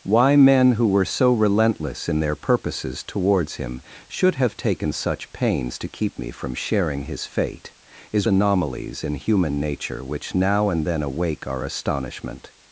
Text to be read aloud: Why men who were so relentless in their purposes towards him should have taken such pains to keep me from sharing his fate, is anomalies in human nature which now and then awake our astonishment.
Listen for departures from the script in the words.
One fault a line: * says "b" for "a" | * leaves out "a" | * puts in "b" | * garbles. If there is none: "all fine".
all fine